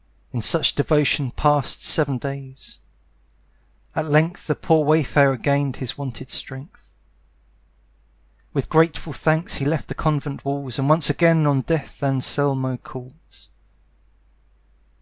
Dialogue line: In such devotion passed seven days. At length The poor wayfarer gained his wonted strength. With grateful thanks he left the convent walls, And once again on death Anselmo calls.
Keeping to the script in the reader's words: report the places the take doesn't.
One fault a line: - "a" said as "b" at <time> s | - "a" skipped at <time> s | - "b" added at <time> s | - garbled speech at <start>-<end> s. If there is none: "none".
none